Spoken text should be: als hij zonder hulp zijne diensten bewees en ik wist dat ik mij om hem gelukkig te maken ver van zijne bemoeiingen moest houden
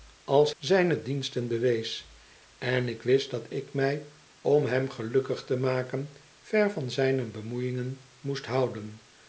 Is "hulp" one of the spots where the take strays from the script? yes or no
yes